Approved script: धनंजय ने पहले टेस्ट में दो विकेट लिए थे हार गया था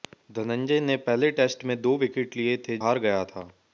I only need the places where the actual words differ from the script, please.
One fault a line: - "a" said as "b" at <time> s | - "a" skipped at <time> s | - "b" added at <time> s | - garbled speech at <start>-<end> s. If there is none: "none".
none